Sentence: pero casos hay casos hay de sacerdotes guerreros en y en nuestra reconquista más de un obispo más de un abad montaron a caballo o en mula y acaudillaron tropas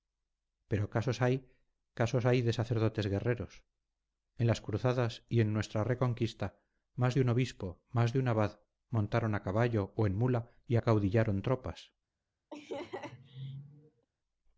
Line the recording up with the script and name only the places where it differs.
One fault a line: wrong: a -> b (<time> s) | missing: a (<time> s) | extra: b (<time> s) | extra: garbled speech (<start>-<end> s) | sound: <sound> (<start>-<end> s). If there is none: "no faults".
extra: las cruzadas (4.5 s)
sound: laugh (12.5-14.1 s)